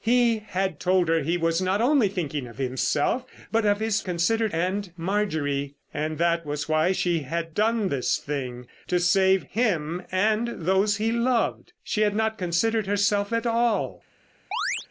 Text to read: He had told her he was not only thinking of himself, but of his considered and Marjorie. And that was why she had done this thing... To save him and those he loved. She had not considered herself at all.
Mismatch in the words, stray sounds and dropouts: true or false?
true